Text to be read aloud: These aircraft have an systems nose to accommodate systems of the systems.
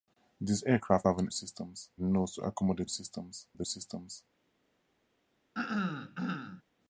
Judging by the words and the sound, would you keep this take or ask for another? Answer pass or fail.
fail